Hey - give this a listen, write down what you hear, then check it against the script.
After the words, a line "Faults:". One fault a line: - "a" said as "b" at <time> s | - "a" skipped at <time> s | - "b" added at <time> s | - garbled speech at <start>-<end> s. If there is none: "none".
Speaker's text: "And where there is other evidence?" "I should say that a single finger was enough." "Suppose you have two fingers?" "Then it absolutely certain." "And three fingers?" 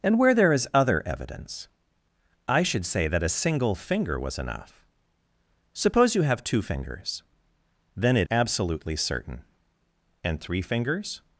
"And where there is other evidence?" "I should say that a single finger was enough." "Suppose you have two fingers?" "Then it absolutely certain." "And three fingers?"
Faults:
none